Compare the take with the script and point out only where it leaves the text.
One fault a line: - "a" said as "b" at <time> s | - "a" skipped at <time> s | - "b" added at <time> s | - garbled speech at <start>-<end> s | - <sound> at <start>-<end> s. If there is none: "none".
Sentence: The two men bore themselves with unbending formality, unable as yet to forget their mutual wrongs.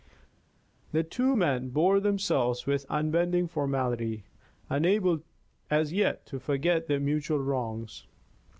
none